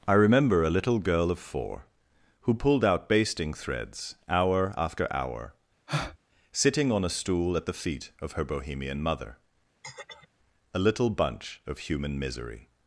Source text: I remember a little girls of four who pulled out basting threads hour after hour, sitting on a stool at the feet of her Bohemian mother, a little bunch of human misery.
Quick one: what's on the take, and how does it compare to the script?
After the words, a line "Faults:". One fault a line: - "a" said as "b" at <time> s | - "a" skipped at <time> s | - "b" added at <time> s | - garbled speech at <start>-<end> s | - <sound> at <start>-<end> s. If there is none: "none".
I remember a little girl of four who pulled out basting threads hour after hour, sitting on a stool at the feet of her Bohemian mother, a little bunch of human misery.
Faults:
- "girls" said as "girl" at 1.0 s
- breath at 5.9-6.2 s
- throat clearing at 9.8-10.3 s